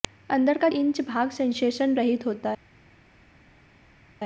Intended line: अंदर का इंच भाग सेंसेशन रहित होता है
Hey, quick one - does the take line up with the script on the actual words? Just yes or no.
yes